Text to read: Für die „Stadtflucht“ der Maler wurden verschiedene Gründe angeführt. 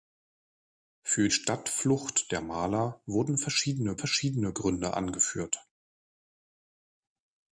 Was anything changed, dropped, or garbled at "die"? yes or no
yes